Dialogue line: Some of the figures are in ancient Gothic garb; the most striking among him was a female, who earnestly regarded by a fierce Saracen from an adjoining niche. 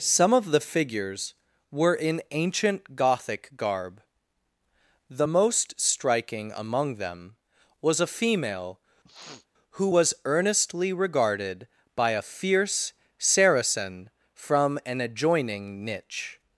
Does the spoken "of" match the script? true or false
true